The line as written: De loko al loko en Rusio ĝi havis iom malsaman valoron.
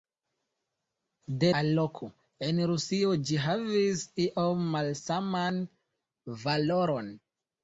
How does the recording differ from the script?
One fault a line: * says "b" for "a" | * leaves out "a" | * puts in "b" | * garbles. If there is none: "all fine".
* leaves out "loko"